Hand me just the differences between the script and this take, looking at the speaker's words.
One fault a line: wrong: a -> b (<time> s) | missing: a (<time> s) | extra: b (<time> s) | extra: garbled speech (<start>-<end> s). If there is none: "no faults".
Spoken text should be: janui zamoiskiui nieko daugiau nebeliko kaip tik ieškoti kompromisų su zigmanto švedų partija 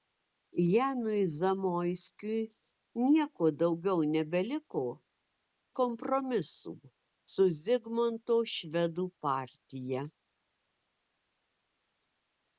missing: kaip tik ieškoti (4.8 s)